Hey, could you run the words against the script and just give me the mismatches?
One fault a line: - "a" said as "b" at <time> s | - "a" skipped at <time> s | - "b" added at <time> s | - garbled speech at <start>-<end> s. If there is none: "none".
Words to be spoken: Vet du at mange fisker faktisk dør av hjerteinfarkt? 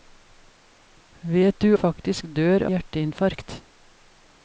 - "at mange fisker" skipped at 1.7 s
- "av" skipped at 2.7 s